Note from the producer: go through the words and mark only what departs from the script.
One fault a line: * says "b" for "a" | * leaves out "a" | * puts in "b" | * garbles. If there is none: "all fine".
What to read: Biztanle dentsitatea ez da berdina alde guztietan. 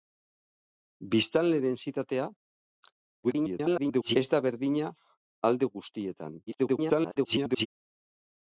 * garbles
* garbles